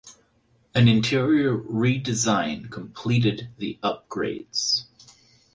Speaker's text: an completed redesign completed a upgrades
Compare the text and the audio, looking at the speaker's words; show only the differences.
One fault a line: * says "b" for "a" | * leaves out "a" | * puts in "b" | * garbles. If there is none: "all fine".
* says "interior" for "completed"
* says "the" for "a"